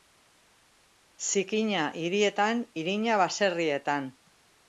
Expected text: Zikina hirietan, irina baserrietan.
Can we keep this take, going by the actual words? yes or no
yes